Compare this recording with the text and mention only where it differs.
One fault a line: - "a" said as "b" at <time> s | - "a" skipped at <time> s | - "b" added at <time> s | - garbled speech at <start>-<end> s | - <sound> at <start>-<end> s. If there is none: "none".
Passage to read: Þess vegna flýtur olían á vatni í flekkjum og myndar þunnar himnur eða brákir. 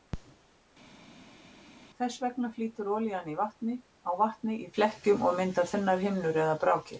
none